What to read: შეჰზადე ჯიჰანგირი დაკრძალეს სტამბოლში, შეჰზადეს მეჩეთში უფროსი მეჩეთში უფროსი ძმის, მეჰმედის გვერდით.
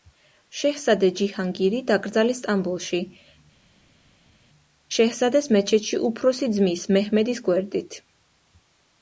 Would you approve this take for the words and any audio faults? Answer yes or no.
no